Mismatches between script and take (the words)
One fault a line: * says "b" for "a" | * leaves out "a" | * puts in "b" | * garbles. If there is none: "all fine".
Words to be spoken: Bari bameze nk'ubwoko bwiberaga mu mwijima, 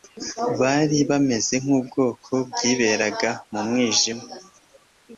all fine